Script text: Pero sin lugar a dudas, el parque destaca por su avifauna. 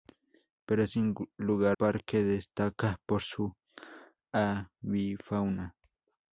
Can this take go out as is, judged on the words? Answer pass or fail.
fail